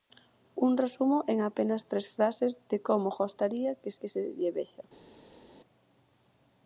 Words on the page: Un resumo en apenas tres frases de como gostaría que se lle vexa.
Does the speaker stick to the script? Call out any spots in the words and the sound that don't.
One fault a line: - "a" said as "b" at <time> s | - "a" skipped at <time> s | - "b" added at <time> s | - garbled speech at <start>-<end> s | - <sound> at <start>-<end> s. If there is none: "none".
- "que" added at 4.0 s